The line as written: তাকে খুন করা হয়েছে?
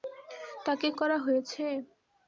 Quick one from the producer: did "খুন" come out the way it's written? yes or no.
no